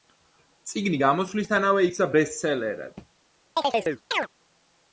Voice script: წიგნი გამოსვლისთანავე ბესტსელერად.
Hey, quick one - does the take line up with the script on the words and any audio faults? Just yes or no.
no